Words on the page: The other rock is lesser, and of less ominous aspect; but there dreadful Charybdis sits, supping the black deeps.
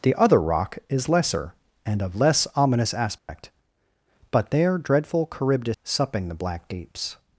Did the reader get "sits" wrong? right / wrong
wrong